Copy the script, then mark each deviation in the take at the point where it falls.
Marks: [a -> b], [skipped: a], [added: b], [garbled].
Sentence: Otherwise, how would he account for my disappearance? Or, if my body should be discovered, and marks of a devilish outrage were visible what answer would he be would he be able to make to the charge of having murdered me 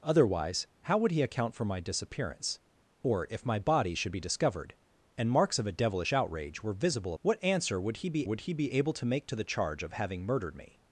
Otherwise, how would he account for my disappearance? Or, if my body should be discovered, and marks of a devilish outrage were visible what answer would he be would he be able to make to the charge of having murdered me